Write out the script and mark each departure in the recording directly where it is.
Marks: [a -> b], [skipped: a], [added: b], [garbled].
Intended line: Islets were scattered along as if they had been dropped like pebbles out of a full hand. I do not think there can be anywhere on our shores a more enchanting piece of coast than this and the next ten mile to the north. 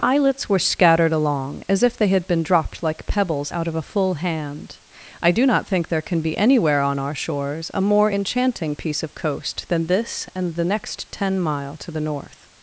Islets were scattered along as if they had been dropped like pebbles out of a full hand. I do not think there can be anywhere on our shores a more enchanting piece of coast than this and the next ten mile to the north.